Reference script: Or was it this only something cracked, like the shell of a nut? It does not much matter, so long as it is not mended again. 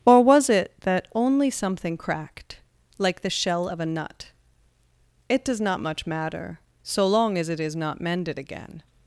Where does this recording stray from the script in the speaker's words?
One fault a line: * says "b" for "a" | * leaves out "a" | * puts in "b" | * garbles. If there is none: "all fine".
* says "that" for "this"